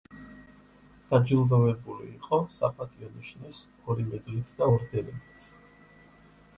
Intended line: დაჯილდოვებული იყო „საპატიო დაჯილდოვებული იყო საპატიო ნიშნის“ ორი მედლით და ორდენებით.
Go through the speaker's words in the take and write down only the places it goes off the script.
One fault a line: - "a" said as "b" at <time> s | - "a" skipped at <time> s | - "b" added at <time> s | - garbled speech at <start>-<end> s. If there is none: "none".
- "დაჯილდოვებული იყო საპატიო" skipped at 3.1 s